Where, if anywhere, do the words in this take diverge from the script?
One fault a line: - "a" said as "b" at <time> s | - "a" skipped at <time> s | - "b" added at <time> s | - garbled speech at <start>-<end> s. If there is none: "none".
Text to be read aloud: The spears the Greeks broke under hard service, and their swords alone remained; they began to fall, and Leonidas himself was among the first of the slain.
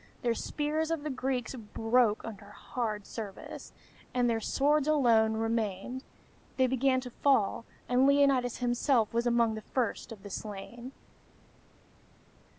- "of" added at 0.9 s